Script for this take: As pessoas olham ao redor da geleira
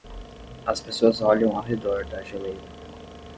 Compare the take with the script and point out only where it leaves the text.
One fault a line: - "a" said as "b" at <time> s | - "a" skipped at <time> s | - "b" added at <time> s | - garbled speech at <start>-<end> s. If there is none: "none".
none